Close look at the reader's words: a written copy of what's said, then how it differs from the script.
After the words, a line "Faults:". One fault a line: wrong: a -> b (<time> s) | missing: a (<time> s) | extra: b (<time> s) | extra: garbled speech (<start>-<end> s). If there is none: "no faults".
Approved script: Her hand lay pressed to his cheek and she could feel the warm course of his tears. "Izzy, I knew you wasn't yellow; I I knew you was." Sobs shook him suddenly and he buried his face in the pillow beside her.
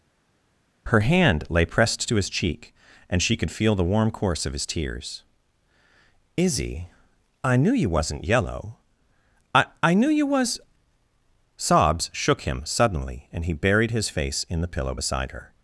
Her hand lay pressed to his cheek and she could feel the warm course of his tears. "Izzy, I knew you wasn't yellow; I I knew you was." Sobs shook him suddenly and he buried his face in the pillow beside her.
Faults:
no faults